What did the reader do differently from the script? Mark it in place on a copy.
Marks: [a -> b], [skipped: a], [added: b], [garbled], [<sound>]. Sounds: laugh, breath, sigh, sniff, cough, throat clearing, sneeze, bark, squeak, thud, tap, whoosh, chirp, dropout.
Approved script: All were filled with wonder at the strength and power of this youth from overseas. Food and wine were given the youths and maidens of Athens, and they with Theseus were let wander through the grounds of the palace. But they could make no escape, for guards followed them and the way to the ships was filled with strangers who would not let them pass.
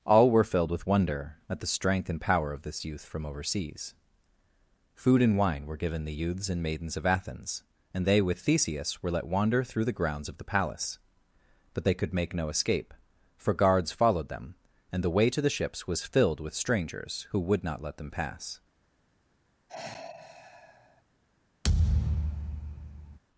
All were filled with wonder at the strength and power of this youth from overseas. Food and wine were given the youths and maidens of Athens, and they with Theseus were let wander through the grounds of the palace. But they could make no escape, for guards followed them and the way to the ships was filled with strangers who would not let them pass. [sigh] [thud]